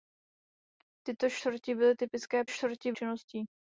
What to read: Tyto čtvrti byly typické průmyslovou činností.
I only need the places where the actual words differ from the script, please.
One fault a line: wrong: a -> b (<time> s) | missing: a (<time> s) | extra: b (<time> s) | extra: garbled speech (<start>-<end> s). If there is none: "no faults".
wrong: průmyslovou -> čtvrti (2.5 s)